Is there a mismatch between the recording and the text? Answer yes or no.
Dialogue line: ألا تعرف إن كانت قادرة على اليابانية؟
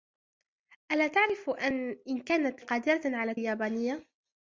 no